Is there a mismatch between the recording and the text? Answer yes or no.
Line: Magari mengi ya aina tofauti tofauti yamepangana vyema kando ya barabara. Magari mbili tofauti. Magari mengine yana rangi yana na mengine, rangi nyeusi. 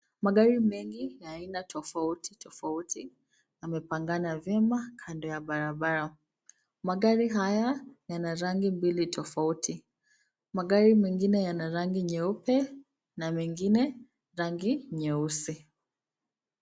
yes